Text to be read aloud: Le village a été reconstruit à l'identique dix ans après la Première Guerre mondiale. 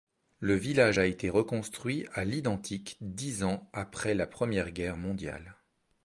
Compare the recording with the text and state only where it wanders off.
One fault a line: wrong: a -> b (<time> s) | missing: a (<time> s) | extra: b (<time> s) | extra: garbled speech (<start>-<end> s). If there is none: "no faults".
no faults